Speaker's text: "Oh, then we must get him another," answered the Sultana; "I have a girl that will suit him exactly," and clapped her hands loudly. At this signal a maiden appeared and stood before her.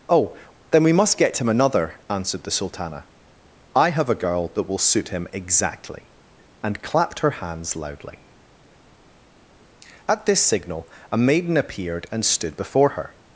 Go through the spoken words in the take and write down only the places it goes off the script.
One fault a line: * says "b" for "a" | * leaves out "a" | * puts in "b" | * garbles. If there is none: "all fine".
all fine